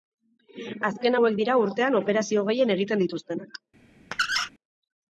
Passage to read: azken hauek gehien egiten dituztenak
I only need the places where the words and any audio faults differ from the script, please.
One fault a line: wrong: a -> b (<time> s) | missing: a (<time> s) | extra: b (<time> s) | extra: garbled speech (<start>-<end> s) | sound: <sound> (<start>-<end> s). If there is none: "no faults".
extra: dira urtean operazio (1.4 s)
sound: squeak (4.1-4.5 s)